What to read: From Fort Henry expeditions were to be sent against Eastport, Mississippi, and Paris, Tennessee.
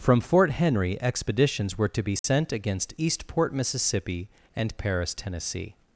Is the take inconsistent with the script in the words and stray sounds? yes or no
yes